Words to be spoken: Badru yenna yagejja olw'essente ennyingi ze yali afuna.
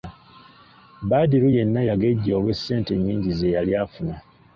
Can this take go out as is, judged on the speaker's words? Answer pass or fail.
pass